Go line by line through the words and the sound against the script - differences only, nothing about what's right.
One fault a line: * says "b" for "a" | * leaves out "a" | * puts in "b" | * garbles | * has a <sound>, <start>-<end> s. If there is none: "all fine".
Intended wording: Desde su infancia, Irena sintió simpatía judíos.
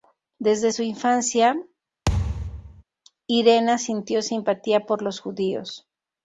* has a thud, 2.1-2.8 s
* puts in "por los"